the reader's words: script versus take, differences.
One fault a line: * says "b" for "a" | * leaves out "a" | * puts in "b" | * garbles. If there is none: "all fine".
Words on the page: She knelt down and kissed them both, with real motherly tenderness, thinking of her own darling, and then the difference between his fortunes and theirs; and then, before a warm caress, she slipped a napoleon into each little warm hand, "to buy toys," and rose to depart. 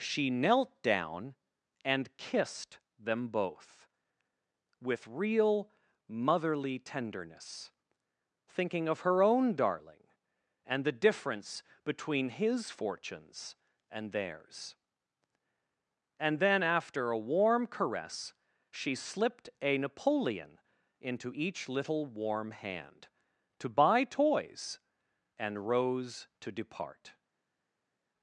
* leaves out "then"
* says "after" for "before"